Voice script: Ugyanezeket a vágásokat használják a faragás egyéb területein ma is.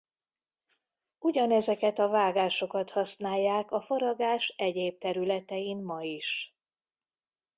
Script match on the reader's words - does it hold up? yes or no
yes